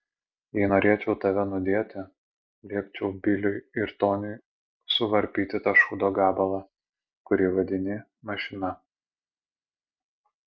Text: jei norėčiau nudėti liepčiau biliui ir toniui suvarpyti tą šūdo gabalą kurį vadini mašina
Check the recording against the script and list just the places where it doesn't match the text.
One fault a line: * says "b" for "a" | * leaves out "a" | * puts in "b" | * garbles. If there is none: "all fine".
* puts in "tave"